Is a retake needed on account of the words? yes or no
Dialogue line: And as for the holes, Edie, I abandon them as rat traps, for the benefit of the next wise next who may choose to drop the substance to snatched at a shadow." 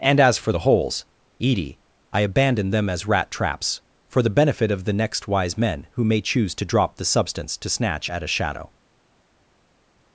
yes